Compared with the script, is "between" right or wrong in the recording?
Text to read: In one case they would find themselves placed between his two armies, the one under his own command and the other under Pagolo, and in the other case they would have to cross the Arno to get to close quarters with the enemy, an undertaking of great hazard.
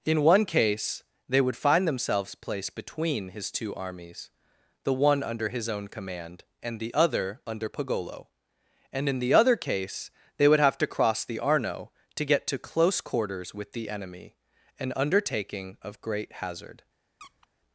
right